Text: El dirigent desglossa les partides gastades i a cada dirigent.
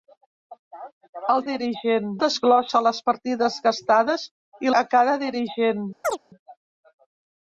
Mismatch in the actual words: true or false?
false